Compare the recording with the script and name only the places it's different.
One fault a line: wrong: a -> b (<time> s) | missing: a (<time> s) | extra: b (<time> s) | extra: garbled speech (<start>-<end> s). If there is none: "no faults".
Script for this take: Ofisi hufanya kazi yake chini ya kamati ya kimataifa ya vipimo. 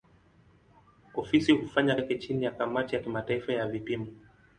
missing: kazi (1.9 s)